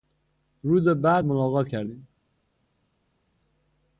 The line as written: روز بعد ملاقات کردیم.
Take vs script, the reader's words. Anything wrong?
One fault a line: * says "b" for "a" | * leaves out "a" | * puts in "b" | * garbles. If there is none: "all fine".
all fine